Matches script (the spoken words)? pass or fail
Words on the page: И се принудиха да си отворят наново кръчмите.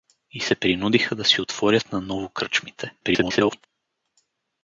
fail